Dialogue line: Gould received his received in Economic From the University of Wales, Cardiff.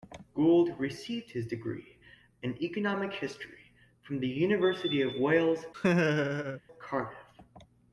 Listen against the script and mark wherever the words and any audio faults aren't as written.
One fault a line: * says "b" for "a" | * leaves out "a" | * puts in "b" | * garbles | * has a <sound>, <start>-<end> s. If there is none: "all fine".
* says "degree" for "received"
* puts in "History"
* has a laugh, 5.7-6.6 s